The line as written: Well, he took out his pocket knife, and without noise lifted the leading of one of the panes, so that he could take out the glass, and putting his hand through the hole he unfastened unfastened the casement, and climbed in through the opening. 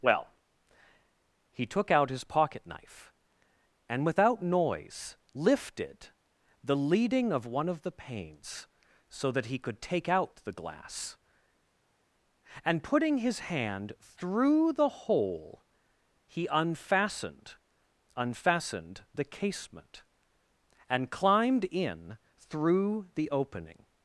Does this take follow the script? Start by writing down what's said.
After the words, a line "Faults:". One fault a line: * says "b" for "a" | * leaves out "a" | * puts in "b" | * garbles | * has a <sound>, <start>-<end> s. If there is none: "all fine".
Well, he took out his pocket knife, and without noise lifted the leading of one of the panes, so that he could take out the glass, and putting his hand through the hole he unfastened unfastened the casement, and climbed in through the opening.
Faults:
all fine